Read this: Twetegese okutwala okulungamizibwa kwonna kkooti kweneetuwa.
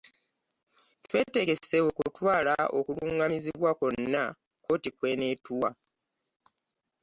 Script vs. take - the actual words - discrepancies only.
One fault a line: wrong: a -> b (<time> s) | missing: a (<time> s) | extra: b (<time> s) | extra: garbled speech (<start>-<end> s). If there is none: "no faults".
no faults